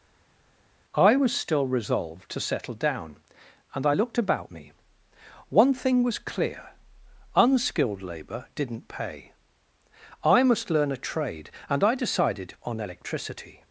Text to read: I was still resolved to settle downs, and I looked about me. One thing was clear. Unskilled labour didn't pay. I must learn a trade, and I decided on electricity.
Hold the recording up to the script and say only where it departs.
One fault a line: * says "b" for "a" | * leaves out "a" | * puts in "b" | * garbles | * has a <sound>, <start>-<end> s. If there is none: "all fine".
* says "down" for "downs"